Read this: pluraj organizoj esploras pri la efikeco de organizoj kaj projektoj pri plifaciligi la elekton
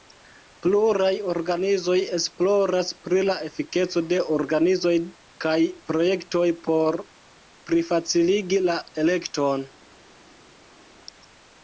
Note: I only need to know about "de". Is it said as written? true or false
true